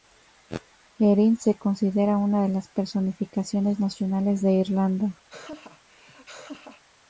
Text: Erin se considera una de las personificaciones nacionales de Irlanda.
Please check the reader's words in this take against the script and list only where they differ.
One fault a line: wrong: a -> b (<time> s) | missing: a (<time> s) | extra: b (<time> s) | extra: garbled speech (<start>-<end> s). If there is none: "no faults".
no faults